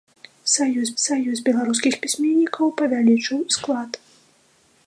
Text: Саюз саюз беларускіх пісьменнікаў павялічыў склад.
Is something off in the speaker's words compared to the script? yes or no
no